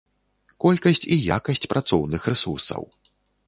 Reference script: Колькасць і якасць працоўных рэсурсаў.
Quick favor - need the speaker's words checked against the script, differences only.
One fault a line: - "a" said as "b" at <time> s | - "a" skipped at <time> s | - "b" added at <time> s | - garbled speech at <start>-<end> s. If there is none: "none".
none